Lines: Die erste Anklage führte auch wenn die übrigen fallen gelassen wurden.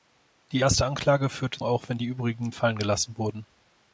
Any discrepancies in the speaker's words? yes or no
no